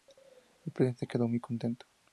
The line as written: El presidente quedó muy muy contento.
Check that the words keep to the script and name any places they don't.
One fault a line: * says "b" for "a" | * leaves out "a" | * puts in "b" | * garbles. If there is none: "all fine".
* leaves out "muy"